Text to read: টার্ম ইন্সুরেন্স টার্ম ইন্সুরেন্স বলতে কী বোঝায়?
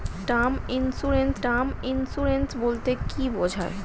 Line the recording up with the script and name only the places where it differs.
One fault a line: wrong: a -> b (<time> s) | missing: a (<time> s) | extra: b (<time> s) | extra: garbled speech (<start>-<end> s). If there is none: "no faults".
no faults